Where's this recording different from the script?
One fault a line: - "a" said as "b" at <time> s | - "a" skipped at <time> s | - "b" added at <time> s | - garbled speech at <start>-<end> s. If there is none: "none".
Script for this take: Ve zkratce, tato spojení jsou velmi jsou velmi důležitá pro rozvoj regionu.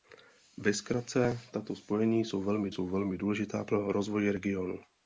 none